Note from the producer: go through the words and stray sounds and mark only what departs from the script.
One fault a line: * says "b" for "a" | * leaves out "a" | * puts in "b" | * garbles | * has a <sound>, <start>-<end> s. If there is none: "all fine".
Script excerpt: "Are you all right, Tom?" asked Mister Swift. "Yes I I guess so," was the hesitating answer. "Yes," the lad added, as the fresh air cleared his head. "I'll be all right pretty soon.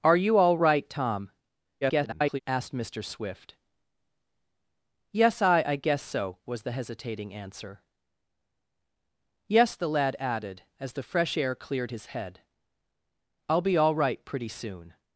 * garbles